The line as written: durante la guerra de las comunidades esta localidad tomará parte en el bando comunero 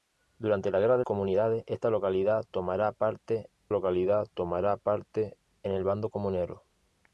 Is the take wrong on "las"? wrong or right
wrong